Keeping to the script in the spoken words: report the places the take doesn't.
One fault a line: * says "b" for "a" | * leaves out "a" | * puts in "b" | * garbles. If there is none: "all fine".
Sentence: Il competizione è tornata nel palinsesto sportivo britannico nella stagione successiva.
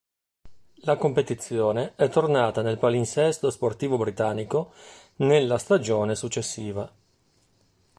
* says "La" for "Il"